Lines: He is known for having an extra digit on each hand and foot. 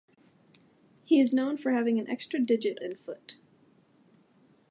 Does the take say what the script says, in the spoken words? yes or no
no